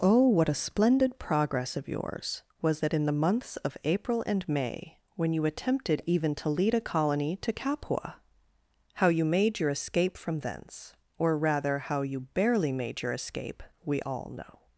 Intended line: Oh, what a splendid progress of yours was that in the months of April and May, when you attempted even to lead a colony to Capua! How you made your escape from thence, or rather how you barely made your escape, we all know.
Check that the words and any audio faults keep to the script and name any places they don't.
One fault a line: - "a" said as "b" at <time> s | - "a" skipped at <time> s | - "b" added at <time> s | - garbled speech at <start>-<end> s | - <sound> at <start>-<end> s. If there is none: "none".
none